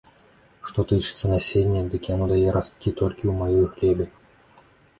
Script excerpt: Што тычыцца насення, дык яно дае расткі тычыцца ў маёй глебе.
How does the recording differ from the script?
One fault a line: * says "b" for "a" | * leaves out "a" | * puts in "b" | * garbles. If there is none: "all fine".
* says "толькі" for "тычыцца"